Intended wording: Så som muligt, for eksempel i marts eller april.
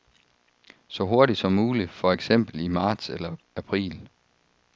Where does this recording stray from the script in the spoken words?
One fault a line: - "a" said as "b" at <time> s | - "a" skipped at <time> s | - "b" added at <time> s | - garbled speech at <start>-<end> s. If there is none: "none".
- "hurtigt" added at 1.0 s